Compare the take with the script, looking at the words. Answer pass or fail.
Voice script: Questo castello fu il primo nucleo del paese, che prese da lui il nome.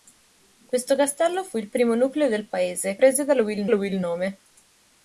fail